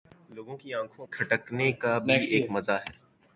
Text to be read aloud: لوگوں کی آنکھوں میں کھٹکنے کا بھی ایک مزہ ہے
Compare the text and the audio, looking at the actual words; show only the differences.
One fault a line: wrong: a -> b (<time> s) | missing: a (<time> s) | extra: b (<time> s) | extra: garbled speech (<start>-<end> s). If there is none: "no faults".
missing: میں (1.1 s)